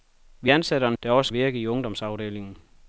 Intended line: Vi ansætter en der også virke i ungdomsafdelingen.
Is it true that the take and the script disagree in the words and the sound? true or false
false